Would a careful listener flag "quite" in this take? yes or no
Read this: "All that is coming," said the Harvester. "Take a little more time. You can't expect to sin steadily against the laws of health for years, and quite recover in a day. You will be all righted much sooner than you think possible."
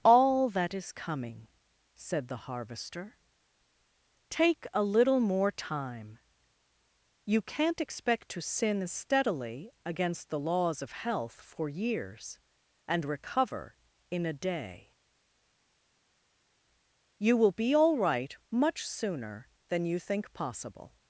yes